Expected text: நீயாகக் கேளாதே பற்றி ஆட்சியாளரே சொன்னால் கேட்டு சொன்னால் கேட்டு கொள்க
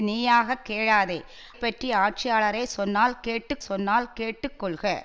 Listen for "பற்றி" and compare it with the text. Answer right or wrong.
right